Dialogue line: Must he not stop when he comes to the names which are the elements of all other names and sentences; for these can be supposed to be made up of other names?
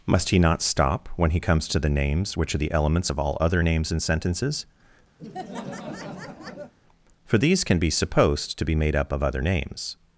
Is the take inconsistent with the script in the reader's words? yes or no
no